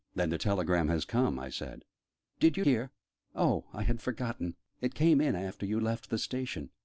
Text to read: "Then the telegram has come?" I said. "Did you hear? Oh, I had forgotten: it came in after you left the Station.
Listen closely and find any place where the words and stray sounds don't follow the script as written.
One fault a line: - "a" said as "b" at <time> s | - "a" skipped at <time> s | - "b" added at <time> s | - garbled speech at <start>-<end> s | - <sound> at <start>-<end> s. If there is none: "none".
none